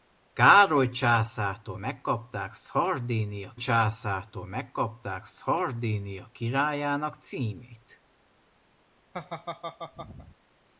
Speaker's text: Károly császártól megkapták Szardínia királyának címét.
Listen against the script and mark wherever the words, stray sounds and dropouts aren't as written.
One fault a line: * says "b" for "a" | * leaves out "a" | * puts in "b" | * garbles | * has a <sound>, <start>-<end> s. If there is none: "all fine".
* puts in "császártól megkapták Szardínia"
* has a laugh, 9.1-10.4 s